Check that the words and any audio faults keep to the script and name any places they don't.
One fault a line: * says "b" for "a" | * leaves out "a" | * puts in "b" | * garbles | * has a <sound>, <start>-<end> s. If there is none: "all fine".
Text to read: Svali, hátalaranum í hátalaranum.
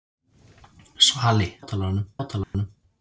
* has a dropout, 2.4-2.5 s